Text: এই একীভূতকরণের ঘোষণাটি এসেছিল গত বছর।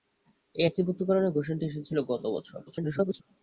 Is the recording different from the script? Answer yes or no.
yes